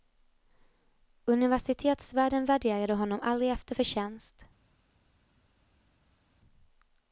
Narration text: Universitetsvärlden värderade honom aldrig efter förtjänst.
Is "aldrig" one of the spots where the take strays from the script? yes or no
no